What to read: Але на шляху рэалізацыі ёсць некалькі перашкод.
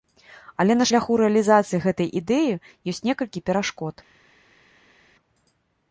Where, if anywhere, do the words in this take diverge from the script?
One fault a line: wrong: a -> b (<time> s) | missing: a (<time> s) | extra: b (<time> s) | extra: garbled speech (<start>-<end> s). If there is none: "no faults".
extra: гэтай ідэі (1.8 s)